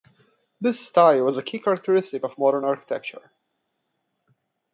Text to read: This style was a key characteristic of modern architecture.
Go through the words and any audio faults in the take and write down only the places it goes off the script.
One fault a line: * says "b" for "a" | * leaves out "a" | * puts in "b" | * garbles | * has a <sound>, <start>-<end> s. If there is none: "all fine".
all fine